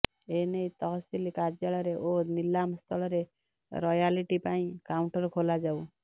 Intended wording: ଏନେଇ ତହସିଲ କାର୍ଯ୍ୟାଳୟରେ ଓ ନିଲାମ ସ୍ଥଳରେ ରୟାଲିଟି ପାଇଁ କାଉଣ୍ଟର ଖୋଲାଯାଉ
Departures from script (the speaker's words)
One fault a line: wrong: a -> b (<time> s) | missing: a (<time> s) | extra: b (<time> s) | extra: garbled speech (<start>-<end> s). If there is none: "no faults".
no faults